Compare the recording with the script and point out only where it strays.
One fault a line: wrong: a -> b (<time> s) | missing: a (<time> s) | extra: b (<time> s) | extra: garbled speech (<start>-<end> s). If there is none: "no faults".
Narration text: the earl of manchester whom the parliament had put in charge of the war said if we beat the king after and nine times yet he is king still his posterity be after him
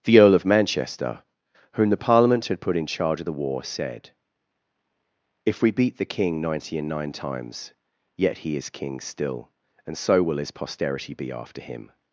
wrong: after -> ninety (6.4 s)
extra: and so will (9.8 s)